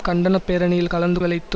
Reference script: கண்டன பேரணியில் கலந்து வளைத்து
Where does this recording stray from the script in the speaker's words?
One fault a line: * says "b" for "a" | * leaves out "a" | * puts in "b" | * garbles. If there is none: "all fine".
all fine